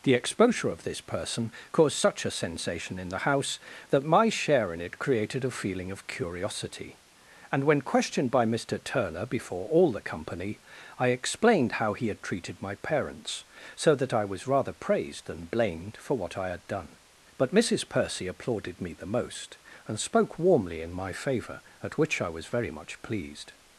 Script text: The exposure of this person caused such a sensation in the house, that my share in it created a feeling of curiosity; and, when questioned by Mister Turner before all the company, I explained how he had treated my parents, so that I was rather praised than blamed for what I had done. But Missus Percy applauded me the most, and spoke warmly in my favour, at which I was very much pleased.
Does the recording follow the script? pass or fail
pass